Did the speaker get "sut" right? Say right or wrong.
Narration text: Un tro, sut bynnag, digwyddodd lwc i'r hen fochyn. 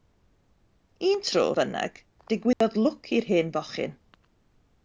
wrong